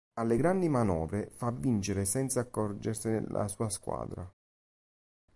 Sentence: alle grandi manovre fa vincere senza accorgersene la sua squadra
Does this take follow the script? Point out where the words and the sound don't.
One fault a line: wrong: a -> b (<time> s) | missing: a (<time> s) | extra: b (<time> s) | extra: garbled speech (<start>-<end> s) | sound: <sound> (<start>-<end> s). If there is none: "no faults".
no faults